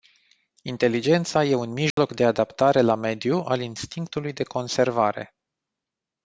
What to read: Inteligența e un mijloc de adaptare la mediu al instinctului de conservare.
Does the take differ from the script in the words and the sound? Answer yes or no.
yes